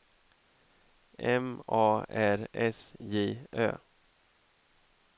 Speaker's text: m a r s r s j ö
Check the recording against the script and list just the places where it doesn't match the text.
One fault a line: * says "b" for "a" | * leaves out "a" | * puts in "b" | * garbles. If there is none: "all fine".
* leaves out "r s"